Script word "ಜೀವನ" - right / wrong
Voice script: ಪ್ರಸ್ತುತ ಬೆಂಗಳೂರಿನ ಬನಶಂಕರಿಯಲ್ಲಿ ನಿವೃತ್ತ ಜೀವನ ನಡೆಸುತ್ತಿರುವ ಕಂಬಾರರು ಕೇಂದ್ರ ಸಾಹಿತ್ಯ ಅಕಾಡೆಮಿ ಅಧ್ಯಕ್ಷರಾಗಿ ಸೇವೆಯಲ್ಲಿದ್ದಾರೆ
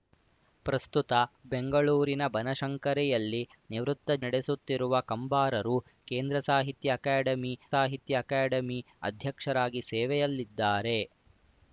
wrong